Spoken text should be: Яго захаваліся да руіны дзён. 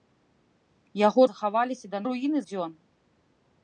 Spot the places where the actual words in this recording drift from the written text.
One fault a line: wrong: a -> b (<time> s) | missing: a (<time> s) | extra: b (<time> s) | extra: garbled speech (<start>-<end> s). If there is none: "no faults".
no faults